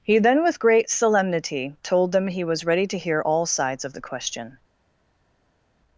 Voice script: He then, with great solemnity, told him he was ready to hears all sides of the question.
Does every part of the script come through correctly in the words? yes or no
no